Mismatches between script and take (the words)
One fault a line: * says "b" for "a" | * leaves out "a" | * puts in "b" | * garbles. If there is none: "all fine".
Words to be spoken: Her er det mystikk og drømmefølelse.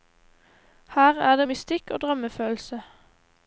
all fine